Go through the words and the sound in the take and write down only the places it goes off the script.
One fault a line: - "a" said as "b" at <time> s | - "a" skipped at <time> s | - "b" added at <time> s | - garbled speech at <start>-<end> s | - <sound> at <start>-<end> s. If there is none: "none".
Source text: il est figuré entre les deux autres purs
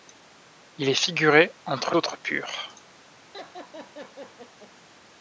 - "les deux" skipped at 1.9 s
- laugh at 3.3-4.7 s